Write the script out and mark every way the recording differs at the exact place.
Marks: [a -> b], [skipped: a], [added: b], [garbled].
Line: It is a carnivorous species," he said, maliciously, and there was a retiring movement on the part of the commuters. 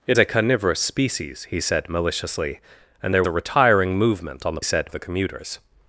It [skipped: is] a carnivorous species," he said, maliciously, and there [skipped: was] a retiring movement on the [part -> said] of the commuters.